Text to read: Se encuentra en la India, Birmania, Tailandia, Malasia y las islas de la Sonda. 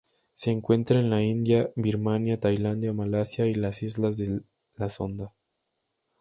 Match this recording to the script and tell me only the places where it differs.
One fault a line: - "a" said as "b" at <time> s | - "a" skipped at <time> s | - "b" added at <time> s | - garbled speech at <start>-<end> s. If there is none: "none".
none